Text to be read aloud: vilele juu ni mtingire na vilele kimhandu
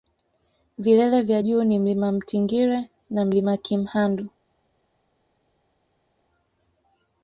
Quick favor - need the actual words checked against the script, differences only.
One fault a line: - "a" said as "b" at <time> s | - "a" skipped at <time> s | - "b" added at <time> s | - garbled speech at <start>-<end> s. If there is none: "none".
- "vya" added at 1.2 s
- "mlima" added at 1.8 s
- "vilele" said as "mlima" at 3.2 s